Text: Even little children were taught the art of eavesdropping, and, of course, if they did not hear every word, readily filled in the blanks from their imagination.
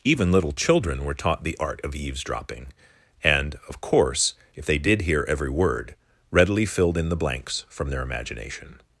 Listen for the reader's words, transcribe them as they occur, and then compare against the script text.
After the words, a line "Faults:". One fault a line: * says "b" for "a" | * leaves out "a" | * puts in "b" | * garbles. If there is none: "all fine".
Even little children were taught the art of eavesdropping, and, of course, if they did hear every word, readily filled in the blanks from their imagination.
Faults:
* leaves out "not"